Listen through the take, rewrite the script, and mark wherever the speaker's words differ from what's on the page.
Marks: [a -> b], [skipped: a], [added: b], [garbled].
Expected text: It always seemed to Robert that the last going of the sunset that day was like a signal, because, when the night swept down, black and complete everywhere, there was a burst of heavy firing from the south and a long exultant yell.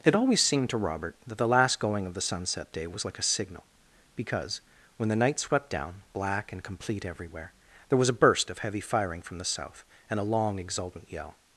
It always seemed to Robert that the last going of the sunset [skipped: that] day was like a signal, because, when the night swept down, black and complete everywhere, there was a burst of heavy firing from the south and a long exultant yell.